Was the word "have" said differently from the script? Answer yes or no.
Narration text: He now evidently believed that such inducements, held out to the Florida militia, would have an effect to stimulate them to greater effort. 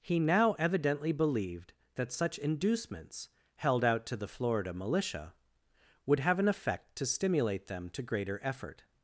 no